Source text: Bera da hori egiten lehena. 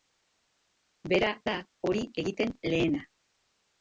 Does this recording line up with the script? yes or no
yes